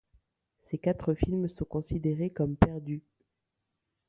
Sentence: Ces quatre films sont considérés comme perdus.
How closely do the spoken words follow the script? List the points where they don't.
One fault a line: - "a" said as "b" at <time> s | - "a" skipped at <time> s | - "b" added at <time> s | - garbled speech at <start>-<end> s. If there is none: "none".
none